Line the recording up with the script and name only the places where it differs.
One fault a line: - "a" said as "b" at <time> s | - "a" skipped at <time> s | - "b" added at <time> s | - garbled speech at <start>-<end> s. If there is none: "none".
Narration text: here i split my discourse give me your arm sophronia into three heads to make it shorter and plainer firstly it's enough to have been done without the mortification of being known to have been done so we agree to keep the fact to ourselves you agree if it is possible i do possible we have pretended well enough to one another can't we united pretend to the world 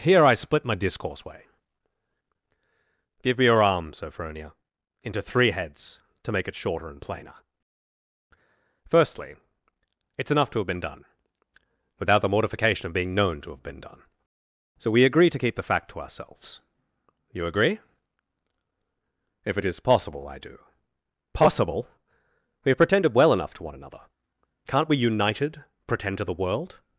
- "way" added at 1.2 s